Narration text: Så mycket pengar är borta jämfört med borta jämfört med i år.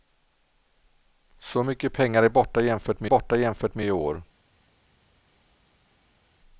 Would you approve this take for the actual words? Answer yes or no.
yes